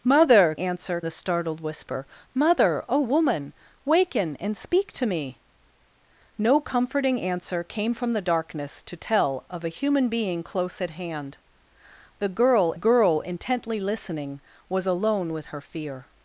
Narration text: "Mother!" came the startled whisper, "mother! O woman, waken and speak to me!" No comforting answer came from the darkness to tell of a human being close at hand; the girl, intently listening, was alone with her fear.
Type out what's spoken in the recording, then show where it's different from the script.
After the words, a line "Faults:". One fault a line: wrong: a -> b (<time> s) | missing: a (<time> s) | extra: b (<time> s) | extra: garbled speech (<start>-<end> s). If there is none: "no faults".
"Mother!" answer the startled whisper, "mother! O woman, waken and speak to me!" No comforting answer came from the darkness to tell of a human being close at hand; the girl girl, intently listening, was alone with her fear.
Faults:
wrong: came -> answer (0.6 s)
extra: girl (12.7 s)